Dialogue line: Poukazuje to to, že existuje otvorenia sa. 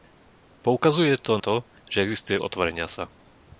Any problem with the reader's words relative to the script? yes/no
no